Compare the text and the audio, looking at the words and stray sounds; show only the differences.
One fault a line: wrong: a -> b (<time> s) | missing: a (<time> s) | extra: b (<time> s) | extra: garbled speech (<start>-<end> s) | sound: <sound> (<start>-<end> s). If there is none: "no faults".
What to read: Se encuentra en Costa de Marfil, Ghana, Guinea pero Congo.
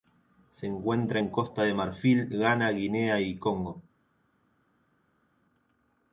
wrong: pero -> y (3.2 s)